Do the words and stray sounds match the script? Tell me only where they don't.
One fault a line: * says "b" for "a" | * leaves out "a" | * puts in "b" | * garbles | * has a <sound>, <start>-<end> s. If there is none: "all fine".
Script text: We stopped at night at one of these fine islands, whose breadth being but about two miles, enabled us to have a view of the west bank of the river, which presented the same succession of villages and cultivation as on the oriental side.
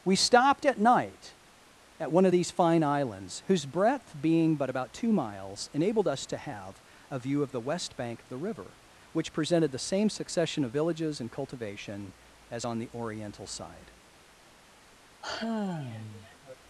* has a sigh, 15.2-16.5 s